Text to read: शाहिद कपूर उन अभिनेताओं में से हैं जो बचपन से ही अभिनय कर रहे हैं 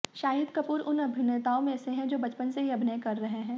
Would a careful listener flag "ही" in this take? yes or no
no